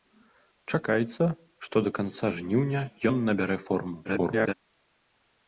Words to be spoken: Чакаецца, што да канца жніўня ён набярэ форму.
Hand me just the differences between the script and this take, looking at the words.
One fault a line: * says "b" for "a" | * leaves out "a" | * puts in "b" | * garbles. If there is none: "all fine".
* garbles